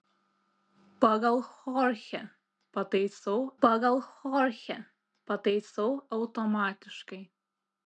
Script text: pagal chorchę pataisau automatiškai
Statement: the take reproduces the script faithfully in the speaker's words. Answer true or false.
false